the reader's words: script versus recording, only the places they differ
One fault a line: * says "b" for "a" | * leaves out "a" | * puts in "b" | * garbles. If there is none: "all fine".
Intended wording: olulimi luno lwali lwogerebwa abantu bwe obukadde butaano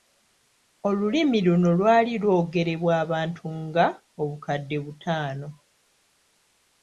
* says "nga" for "bwe"